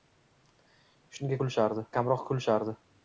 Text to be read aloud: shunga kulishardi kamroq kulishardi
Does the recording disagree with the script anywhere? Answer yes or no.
no